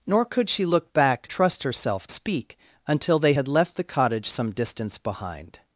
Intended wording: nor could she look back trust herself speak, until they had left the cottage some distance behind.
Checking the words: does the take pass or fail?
pass